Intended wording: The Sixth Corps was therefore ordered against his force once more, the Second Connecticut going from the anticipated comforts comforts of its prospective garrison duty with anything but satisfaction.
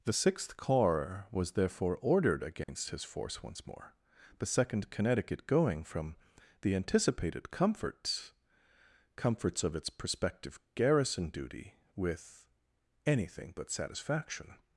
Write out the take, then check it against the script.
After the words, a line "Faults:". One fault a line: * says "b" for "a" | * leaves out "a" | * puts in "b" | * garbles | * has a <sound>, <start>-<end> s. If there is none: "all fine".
The Sixth Corps was therefore ordered against his force once more, the Second Connecticut going from the anticipated comforts comforts of its prospective garrison duty with anything but satisfaction.
Faults:
* has a dropout, 2.6-2.7 s